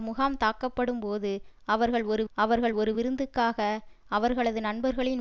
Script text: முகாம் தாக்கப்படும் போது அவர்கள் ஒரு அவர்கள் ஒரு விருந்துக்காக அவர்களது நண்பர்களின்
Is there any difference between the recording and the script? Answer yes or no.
no